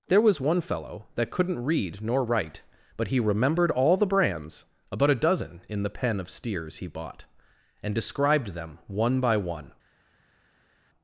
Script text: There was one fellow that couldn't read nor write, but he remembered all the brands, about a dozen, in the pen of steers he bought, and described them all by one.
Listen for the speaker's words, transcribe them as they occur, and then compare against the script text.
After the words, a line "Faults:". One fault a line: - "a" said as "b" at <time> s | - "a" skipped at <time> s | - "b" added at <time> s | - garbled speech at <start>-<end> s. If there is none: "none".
There was one fellow that couldn't read nor write, but he remembered all the brands, about a dozen, in the pen of steers he bought, and described them one by one.
Faults:
- "all" said as "one" at 8.9 s